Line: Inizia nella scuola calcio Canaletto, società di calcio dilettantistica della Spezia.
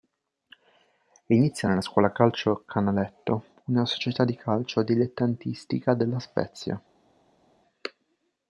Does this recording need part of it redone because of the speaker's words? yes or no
yes